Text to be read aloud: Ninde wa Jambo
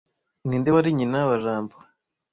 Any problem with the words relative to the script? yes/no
yes